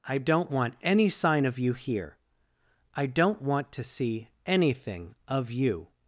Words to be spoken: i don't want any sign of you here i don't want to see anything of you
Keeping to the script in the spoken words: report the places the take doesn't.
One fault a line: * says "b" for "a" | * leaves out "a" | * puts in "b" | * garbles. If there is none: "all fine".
all fine